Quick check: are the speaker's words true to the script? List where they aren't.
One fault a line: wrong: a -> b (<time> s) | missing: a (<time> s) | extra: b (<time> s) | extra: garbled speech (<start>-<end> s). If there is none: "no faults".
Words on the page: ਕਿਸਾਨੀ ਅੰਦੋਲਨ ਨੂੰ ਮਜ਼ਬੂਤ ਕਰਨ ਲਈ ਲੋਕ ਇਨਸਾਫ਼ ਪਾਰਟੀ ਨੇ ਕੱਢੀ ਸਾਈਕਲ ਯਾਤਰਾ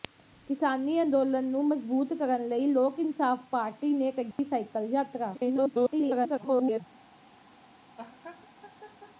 extra: garbled speech (5.3-6.8 s)